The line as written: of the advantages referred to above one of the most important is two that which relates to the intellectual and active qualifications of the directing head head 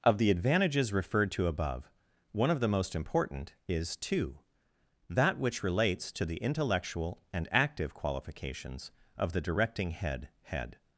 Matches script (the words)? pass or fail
pass